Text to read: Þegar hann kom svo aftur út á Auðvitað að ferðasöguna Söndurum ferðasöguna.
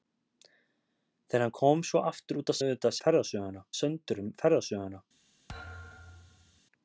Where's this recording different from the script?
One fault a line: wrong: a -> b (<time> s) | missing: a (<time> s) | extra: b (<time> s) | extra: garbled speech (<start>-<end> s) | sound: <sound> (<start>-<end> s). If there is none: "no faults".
sound: thud (5.5-6.6 s)